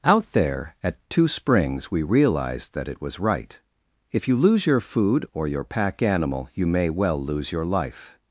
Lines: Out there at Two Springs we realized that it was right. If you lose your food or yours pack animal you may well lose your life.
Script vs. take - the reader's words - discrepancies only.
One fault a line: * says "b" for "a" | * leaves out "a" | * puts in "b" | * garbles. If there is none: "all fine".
* says "your" for "yours"